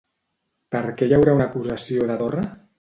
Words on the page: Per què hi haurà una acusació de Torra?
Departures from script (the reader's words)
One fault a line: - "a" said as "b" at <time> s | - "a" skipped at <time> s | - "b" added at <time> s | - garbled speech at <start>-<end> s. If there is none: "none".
none